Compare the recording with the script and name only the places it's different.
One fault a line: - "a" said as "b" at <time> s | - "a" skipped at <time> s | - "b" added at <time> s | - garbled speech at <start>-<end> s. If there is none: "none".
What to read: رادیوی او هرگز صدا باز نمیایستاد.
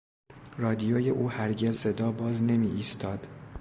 none